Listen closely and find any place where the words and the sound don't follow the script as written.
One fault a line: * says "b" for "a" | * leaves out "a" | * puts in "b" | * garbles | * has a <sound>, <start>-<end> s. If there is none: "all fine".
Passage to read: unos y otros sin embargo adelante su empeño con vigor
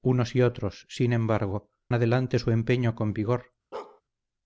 * has a bark, 3.7-4.0 s